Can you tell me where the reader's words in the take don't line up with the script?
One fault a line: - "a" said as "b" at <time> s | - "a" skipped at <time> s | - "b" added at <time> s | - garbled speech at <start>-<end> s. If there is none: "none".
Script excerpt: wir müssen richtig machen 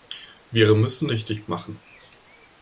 none